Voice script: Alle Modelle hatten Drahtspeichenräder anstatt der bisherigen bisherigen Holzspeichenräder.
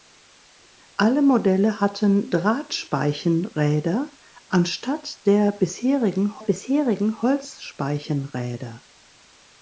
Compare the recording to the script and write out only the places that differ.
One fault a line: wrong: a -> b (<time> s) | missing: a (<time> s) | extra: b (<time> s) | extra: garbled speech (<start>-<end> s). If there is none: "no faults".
no faults